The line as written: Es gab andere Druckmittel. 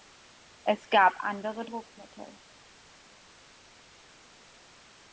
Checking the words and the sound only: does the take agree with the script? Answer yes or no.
yes